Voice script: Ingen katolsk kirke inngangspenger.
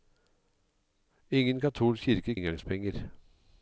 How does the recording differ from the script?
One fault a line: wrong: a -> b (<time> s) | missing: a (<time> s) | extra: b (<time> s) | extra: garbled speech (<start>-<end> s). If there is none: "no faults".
no faults